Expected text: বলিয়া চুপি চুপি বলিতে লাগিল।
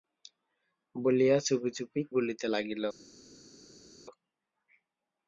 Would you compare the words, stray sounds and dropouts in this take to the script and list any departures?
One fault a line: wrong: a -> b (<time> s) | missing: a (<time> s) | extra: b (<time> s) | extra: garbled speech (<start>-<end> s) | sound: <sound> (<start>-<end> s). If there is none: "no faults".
no faults